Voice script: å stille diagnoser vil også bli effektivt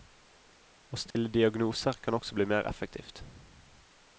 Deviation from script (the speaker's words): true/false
true